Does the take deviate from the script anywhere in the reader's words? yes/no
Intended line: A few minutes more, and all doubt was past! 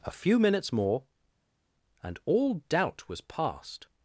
no